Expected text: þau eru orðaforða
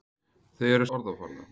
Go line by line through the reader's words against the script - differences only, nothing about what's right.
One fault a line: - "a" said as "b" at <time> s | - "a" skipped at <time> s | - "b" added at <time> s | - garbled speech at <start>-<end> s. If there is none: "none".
none